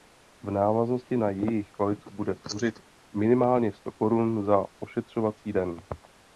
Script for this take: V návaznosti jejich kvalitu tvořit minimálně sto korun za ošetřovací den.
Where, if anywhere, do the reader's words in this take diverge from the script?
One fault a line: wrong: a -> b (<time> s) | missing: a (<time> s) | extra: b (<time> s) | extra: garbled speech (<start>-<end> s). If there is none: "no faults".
extra: na (1.2 s)
extra: bude (2.1 s)